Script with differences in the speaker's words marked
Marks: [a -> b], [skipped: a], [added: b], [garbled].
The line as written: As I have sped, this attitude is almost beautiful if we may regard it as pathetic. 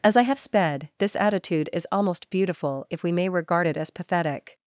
As I have sped, this attitude is almost beautiful if we may regard it as pathetic.